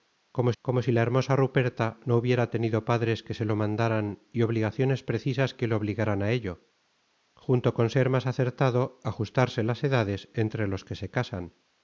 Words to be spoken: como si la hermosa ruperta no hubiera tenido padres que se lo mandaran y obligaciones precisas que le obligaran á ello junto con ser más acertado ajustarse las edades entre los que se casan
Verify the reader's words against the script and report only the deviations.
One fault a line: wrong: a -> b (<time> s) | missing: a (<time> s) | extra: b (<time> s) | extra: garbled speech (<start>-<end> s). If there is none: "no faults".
extra: como (0.6 s)